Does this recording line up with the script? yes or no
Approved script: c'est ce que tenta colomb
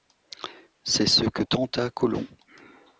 yes